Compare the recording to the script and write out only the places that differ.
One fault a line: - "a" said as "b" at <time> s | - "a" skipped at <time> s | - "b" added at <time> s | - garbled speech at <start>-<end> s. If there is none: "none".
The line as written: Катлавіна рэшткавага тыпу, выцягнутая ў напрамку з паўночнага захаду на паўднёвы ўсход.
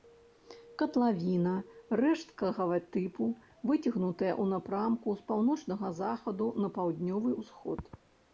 none